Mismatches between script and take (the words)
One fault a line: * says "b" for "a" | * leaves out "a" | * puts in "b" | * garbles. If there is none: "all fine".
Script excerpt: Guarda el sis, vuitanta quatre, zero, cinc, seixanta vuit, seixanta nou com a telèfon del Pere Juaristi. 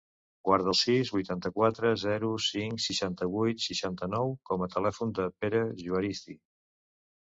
all fine